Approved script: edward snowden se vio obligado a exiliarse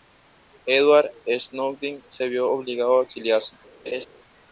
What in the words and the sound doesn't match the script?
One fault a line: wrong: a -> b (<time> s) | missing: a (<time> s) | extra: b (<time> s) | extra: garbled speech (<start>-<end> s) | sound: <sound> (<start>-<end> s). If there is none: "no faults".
sound: laugh (3.9-4.1 s)